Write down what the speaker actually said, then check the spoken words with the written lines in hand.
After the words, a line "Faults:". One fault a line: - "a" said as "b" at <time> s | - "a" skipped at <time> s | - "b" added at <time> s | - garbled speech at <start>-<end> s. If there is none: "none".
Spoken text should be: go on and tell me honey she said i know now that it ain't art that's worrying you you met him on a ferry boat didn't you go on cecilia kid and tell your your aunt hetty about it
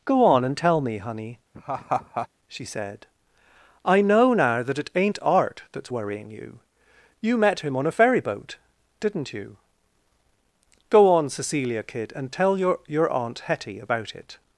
go on and tell me honey she said i know now that it ain't art that's worrying you you met him on a ferry boat didn't you go on cecilia kid and tell your your aunt hetty about it
Faults:
none